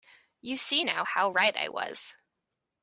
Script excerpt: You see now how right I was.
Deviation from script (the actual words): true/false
false